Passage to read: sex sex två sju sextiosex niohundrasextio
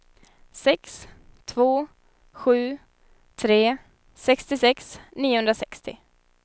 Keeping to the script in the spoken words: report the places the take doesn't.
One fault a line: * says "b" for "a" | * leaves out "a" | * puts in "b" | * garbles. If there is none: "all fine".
* leaves out "sex"
* puts in "tre"